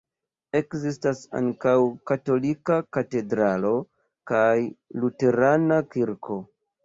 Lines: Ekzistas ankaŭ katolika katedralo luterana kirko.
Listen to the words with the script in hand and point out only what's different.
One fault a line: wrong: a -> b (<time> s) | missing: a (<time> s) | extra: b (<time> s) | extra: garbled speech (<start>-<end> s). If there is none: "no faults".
extra: kaj (4.3 s)